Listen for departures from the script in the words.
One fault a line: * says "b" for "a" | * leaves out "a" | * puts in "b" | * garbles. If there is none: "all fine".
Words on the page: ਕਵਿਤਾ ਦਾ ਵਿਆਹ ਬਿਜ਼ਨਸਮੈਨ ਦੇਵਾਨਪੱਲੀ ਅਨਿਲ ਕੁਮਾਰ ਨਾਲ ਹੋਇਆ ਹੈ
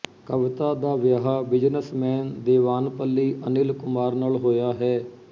all fine